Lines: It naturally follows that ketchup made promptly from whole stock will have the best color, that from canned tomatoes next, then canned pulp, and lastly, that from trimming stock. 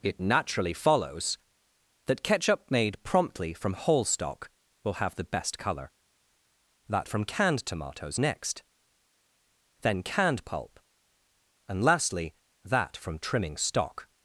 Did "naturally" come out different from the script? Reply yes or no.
no